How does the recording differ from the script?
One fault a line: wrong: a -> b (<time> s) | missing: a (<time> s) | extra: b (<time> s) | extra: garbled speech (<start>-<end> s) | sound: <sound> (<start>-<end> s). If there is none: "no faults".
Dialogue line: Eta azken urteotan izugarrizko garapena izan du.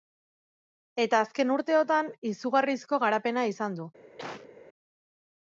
sound: cough (4.2-4.5 s)